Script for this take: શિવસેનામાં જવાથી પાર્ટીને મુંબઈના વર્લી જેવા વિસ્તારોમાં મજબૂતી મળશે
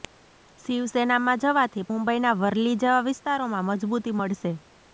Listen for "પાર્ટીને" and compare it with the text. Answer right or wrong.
wrong